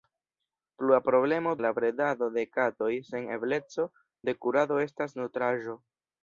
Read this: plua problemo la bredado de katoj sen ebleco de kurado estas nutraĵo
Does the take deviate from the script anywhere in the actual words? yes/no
no